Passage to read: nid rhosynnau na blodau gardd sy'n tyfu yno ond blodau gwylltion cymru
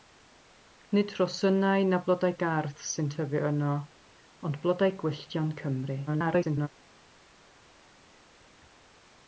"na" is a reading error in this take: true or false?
false